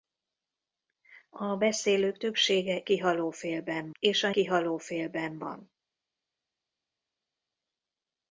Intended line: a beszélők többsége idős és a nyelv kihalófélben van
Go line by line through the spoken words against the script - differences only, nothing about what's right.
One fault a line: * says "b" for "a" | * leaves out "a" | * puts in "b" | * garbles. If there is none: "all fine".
* says "kihalófélben" for "idős"
* leaves out "nyelv"